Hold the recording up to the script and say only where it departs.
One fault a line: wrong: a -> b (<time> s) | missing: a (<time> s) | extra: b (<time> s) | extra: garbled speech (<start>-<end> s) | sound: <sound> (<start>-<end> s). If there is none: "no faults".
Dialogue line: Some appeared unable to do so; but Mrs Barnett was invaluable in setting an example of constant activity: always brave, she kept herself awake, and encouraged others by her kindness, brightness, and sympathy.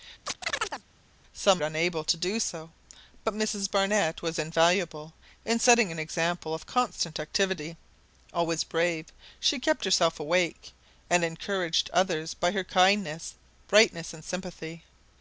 sound: chirp (0.3-0.8 s)
missing: appeared (1.6 s)